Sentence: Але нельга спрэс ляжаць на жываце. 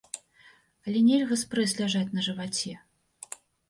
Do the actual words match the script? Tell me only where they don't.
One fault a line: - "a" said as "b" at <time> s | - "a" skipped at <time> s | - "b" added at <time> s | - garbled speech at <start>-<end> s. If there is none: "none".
none